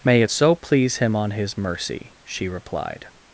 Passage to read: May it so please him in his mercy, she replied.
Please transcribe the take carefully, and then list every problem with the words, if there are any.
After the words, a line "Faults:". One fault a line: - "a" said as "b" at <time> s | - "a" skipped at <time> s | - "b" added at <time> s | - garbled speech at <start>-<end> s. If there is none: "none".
May it so please him on his mercy, she replied.
Faults:
- "in" said as "on" at 1.2 s